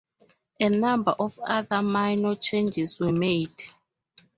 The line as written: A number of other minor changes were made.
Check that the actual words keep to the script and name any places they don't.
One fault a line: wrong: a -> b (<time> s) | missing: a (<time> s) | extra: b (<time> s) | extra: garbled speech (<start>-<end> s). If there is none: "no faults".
no faults